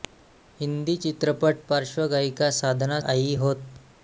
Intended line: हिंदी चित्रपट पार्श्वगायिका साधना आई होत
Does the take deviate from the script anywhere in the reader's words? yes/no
no